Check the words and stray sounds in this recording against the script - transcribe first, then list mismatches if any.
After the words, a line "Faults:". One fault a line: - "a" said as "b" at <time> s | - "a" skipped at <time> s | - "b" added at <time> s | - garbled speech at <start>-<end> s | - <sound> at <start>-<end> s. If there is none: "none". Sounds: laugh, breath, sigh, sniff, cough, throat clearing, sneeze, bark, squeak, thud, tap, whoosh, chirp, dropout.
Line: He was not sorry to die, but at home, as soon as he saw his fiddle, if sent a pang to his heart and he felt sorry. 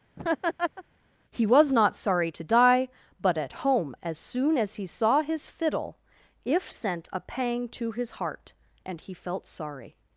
He was not sorry to die, but at home, as soon as he saw his fiddle, if sent a pang to his heart and he felt sorry.
Faults:
- laugh at 0.2-0.8 s